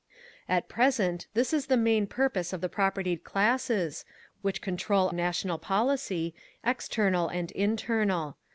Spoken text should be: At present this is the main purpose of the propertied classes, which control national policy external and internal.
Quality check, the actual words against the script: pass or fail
pass